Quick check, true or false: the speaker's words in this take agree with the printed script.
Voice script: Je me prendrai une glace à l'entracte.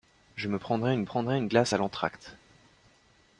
false